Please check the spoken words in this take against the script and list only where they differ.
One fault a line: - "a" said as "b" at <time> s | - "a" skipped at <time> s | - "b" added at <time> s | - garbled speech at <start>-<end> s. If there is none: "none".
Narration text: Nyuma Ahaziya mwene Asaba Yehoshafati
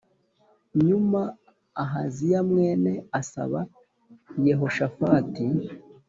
none